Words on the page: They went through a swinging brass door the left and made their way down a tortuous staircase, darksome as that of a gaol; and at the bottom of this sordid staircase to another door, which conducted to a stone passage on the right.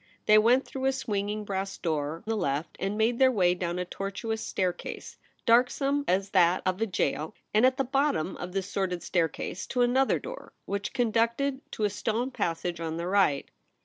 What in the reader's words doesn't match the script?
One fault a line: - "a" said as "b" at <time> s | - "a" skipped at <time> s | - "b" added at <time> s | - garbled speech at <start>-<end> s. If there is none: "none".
none